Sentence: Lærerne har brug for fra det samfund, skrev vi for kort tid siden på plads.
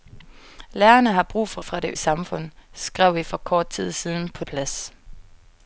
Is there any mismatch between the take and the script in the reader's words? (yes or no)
no